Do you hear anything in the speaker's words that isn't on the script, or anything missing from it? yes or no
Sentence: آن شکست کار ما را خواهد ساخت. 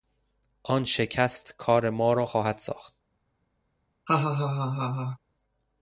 no